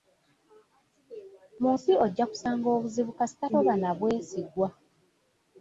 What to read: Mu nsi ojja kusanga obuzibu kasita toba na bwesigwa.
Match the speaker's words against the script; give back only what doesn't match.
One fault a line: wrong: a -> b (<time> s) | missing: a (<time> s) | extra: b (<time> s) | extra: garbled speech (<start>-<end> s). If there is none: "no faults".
no faults